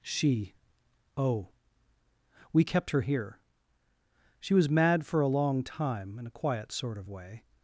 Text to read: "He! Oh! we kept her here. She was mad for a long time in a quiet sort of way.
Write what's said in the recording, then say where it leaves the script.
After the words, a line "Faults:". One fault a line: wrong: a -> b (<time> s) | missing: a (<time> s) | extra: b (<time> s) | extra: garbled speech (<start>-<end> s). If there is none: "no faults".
"She! Oh! we kept her here. She was mad for a long time in a quiet sort of way.
Faults:
wrong: He -> She (0.0 s)